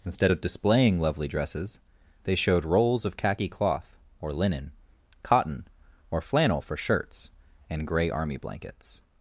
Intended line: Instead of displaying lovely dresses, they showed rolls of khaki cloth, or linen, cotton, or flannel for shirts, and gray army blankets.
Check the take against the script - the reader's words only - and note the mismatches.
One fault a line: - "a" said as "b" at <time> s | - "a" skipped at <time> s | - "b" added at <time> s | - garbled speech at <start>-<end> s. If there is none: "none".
none